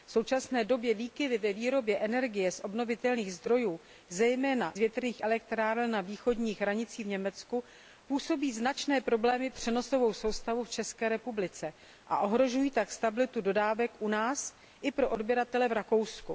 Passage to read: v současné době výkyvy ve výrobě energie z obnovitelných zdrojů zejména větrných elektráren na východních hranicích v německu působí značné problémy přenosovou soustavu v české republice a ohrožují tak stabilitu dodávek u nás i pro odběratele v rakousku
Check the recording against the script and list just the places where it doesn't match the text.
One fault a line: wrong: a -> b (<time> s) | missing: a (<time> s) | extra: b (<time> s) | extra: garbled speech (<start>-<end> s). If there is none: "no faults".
no faults